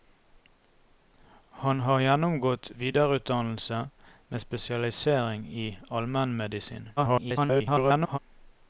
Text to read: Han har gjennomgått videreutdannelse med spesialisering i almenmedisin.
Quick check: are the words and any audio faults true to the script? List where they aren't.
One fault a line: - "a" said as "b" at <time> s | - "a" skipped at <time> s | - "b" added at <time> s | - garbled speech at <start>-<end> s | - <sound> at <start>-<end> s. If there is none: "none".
- garbled speech at 7.0-8.2 s